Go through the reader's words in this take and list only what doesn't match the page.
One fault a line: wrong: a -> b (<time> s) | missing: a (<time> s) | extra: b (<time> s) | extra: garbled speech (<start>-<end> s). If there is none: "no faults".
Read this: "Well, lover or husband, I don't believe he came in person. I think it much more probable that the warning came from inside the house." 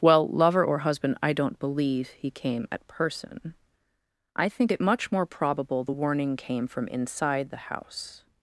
wrong: in -> at (2.7 s)
missing: that (5.8 s)